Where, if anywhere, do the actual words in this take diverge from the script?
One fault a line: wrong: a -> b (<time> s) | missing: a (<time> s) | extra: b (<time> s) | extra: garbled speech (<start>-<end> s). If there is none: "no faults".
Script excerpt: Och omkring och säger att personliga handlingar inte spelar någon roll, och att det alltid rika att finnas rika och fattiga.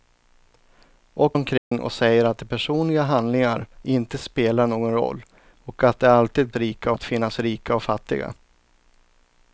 no faults